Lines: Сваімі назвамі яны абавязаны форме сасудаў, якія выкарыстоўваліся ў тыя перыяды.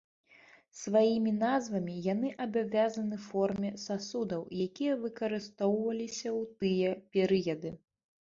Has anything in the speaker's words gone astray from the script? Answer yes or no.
no